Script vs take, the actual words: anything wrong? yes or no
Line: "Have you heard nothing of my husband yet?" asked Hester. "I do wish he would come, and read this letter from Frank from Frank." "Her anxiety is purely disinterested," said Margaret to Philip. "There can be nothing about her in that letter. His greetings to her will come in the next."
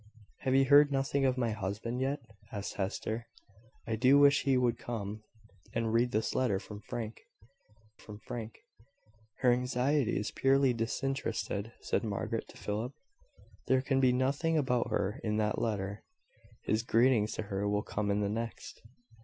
no